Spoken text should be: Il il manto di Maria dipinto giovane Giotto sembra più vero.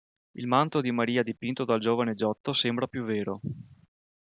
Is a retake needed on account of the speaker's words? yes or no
yes